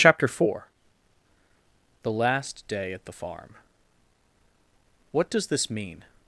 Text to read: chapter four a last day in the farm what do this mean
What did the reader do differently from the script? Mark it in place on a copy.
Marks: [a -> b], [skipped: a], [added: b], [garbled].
chapter four [a -> the] last day [in -> at] the farm what [do -> does] this mean